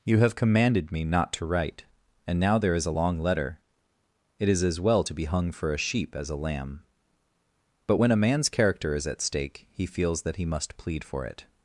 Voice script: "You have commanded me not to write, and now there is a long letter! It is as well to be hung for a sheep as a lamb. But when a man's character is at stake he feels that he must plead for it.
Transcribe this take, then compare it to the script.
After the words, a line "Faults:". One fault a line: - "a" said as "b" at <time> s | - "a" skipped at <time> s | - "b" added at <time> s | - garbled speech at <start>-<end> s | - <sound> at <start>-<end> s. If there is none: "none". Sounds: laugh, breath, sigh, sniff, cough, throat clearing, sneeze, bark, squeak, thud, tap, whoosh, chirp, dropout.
"You have commanded me not to write, and now there is a long letter! It is as well to be hung for a sheep as a lamb. But when a man's character is at stake he feels that he must plead for it.
Faults:
none